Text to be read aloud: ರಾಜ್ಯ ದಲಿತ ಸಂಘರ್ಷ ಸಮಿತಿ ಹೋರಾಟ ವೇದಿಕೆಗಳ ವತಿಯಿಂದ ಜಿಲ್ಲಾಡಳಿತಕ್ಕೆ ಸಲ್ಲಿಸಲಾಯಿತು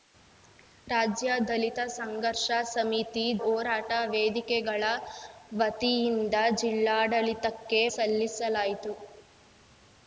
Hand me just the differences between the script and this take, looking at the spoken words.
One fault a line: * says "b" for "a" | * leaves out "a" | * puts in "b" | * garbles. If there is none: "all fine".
all fine